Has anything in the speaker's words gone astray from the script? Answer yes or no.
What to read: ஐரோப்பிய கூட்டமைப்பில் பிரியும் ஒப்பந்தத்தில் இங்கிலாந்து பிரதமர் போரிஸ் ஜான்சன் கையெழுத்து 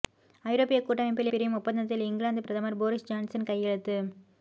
no